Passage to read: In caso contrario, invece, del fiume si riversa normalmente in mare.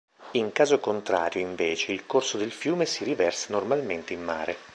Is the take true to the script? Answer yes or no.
no